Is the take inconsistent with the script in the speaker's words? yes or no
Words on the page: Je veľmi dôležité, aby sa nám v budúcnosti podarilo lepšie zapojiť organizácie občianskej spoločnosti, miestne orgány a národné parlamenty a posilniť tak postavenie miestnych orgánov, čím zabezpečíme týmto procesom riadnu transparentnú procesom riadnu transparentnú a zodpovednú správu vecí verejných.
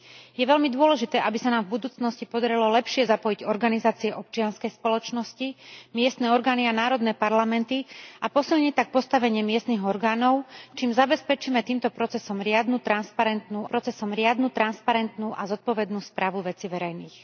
no